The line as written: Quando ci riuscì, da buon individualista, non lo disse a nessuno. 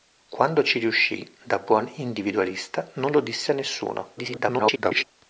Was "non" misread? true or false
false